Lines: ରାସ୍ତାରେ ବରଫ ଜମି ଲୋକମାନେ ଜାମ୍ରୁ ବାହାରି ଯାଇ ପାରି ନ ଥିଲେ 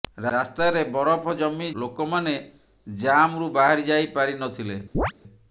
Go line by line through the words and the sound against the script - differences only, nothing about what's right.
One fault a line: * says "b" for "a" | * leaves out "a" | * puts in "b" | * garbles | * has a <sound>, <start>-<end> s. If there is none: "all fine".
* has a chirp, 4.9-5.1 s